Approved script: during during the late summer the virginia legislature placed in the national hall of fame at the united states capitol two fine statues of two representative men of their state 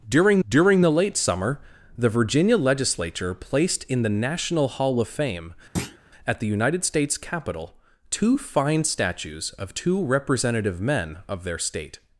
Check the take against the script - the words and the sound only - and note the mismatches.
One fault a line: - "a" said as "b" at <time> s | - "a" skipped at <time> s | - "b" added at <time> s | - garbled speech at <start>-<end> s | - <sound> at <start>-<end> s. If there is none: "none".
- thud at 5.8-6.0 s